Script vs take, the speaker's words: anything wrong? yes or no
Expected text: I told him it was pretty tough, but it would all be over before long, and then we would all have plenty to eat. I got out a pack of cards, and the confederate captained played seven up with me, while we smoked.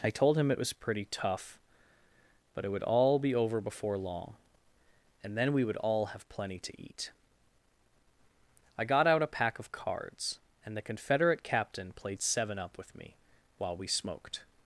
yes